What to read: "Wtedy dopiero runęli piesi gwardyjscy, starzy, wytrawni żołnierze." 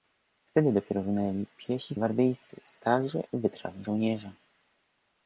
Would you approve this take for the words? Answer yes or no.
yes